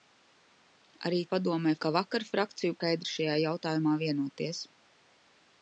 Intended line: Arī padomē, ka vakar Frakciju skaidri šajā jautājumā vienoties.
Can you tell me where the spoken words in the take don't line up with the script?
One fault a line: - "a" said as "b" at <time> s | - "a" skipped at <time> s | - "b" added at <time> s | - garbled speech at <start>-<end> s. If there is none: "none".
none